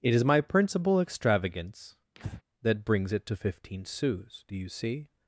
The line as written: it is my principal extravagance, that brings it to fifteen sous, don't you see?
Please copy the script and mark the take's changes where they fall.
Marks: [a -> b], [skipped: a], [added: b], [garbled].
it is my principal extravagance, that brings it to fifteen sous, [don't -> do] you see?